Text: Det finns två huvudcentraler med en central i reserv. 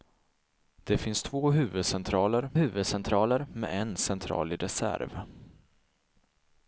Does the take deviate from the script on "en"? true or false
false